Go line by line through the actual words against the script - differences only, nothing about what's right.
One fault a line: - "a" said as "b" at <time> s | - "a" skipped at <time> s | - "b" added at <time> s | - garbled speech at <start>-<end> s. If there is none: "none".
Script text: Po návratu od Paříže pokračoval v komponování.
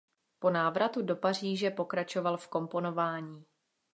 - "od" said as "do" at 1.0 s